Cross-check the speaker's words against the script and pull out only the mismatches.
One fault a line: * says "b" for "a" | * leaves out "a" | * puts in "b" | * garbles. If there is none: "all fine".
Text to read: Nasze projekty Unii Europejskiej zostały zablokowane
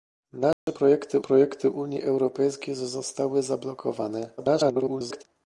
* puts in "projekty"
* garbles